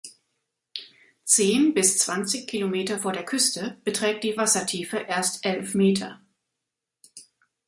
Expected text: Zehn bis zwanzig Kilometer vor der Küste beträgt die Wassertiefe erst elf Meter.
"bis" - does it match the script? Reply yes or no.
yes